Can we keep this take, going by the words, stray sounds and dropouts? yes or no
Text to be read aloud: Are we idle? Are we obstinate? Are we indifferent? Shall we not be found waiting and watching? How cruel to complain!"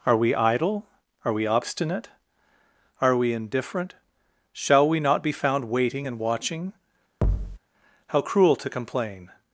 no